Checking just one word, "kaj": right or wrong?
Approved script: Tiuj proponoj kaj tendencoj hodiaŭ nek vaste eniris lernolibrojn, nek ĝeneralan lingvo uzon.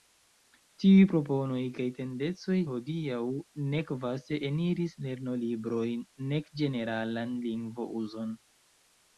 right